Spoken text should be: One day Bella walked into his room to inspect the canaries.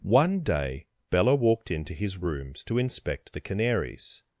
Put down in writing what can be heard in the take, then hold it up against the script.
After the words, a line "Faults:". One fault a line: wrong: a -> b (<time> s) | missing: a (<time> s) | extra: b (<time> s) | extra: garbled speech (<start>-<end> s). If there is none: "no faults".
One day Bella walked into his rooms to inspect the canaries.
Faults:
wrong: room -> rooms (2.2 s)